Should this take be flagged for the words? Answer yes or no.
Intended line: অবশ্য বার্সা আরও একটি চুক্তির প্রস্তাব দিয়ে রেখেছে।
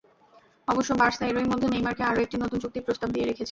yes